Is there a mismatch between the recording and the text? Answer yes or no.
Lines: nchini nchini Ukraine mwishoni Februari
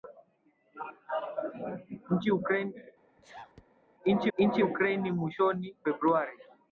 no